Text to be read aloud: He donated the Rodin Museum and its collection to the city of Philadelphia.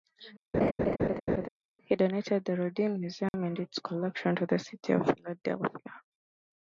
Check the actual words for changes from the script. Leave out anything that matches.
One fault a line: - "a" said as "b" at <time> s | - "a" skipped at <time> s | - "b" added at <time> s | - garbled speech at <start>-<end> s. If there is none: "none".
none